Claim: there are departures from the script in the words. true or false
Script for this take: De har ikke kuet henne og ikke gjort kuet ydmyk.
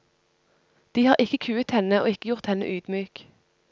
true